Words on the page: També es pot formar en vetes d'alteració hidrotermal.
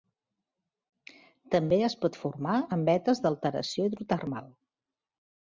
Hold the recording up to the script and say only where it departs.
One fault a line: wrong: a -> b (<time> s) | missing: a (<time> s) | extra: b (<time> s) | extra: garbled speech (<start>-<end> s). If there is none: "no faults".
no faults